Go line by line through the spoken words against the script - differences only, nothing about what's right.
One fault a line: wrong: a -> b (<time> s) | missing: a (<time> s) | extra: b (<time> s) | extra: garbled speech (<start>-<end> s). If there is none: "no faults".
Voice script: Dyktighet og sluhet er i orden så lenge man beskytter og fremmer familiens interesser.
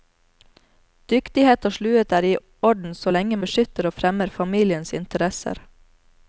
missing: man (3.4 s)